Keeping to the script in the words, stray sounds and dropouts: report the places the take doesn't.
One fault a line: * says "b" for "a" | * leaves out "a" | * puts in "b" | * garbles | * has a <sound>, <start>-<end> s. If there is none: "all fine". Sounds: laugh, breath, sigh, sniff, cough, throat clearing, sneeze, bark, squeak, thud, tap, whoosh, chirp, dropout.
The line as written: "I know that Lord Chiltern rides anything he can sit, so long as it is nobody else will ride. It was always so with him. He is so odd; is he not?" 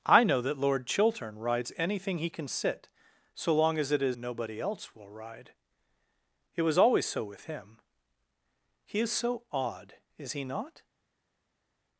all fine